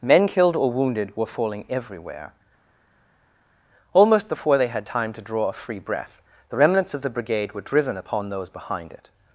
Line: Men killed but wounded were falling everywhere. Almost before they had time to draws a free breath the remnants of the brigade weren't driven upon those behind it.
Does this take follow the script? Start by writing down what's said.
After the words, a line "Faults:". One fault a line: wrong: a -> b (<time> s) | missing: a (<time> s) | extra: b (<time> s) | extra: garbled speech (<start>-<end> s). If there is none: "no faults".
Men killed or wounded were falling everywhere. Almost before they had time to draw a free breath the remnants of the brigade were driven upon those behind it.
Faults:
wrong: but -> or (0.6 s)
wrong: draws -> draw (5.2 s)
wrong: weren't -> were (7.5 s)